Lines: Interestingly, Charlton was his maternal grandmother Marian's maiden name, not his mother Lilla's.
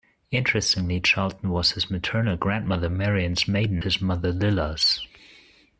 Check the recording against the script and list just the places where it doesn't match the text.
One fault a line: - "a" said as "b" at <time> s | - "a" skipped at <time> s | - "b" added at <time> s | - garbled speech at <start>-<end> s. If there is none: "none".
- "name not" skipped at 3.8 s